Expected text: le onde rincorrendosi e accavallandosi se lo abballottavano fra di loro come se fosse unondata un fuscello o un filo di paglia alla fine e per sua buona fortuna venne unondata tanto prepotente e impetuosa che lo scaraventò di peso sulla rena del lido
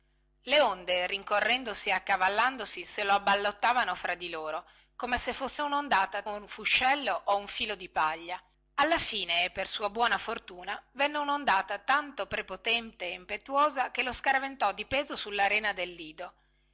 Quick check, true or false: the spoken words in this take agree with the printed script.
true